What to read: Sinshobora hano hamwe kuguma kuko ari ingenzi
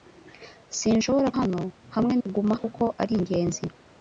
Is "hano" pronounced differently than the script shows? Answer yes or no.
no